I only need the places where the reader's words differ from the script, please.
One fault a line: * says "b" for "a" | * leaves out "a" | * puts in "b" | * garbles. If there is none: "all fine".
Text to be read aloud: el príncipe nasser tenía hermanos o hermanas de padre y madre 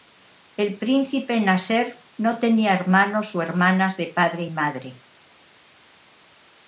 * puts in "no"